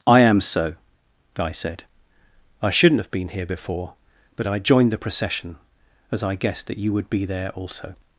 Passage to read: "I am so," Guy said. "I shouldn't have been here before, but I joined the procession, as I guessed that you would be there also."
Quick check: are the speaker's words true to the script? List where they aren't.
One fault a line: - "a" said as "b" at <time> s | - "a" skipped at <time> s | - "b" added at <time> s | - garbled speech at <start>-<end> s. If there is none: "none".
none